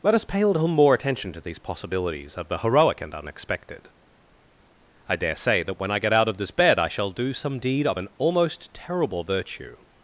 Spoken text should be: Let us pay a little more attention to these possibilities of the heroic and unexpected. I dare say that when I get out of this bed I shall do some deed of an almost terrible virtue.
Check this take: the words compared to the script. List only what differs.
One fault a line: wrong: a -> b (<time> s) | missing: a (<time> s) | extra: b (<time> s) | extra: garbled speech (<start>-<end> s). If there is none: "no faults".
no faults